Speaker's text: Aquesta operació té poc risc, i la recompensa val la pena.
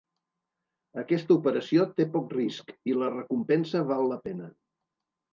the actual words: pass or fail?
pass